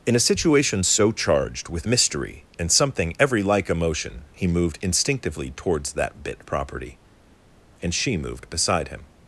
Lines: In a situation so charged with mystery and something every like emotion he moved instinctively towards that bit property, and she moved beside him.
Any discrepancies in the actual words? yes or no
no